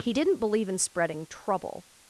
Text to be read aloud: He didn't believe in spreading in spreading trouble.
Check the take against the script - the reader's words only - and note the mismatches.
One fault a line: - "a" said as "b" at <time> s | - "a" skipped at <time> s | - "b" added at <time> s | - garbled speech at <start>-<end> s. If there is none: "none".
- "in spreading" skipped at 1.3 s